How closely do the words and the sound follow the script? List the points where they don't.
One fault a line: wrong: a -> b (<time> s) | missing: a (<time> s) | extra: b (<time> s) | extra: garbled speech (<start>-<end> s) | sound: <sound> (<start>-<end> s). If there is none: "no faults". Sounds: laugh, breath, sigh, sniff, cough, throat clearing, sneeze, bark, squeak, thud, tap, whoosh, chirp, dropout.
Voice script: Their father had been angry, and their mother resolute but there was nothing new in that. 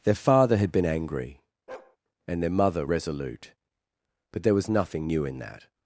sound: bark (1.7-2.0 s)